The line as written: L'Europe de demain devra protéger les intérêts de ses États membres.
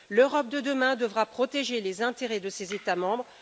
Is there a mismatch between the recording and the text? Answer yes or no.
no